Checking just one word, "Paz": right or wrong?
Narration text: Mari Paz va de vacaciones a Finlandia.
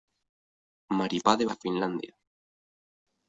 wrong